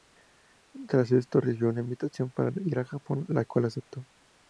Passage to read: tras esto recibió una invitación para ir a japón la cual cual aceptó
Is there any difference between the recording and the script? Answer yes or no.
yes